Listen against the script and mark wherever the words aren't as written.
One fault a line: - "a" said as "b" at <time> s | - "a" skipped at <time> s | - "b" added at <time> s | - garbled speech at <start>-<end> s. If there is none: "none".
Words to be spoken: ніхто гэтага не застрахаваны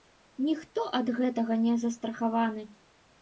- "ад" added at 1.0 s